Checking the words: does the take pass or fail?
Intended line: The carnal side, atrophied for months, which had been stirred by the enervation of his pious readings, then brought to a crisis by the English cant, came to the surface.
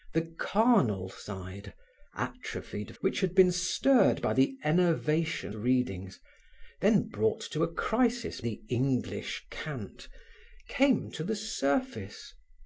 fail